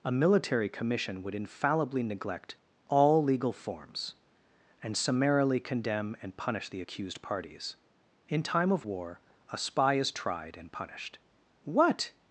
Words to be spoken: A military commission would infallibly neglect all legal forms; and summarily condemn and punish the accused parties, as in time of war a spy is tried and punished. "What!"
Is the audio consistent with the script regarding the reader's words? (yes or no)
no